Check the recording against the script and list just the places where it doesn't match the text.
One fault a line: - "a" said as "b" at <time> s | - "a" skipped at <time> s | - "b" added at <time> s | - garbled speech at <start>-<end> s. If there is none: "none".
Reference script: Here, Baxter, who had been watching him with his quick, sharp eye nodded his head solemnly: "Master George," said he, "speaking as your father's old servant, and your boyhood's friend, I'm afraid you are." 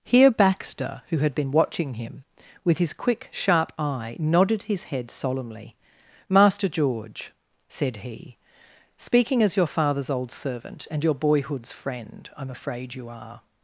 none